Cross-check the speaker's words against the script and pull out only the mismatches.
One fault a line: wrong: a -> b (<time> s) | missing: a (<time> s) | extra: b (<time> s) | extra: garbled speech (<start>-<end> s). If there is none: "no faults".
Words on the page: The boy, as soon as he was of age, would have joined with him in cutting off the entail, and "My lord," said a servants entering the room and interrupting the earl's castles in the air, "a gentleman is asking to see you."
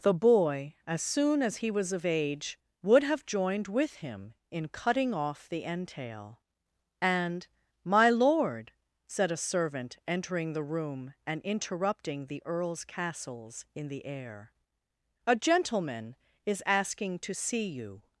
wrong: servants -> servant (9.4 s)